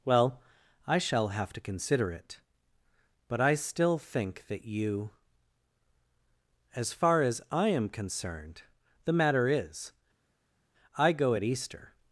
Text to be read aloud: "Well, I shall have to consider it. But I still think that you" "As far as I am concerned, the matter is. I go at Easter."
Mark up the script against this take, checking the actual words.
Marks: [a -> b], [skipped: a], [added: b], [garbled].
"Well, I shall have to consider it. But I still think that you" "As far as I am concerned, the matter is. I go at Easter."